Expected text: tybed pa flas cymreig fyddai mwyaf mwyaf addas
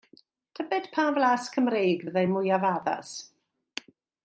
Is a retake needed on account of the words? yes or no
yes